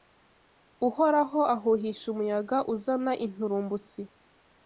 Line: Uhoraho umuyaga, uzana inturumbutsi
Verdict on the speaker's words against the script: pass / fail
fail